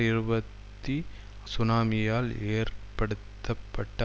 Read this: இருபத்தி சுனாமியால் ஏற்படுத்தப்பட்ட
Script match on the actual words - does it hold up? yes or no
yes